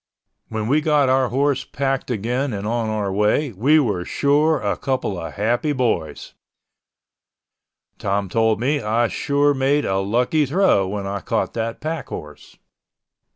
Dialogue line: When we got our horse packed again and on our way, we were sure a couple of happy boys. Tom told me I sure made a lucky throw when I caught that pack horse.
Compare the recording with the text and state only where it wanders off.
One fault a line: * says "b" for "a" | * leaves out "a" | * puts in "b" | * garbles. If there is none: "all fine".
all fine